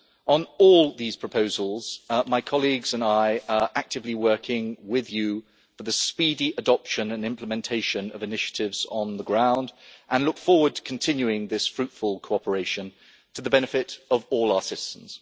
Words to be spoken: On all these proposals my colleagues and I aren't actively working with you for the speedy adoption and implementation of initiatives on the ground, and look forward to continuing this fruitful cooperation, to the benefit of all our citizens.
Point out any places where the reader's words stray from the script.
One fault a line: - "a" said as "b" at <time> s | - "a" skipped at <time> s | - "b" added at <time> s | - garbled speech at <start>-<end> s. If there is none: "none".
- "aren't" said as "are" at 3.5 s